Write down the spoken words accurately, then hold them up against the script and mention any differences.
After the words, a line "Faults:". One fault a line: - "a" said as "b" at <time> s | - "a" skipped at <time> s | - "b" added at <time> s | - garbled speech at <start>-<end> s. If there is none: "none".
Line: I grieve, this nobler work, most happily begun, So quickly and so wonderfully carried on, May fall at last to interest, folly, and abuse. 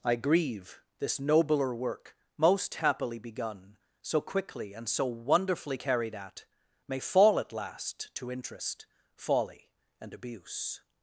I grieve, this nobler work, most happily begun, So quickly and so wonderfully carried at, May fall at last to interest, folly, and abuse.
Faults:
- "on" said as "at" at 6.1 s